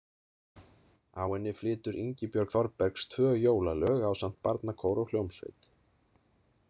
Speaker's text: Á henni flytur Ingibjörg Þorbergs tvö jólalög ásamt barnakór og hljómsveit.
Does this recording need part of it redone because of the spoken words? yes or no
no